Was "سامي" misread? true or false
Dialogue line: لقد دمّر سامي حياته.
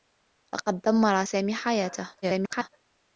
false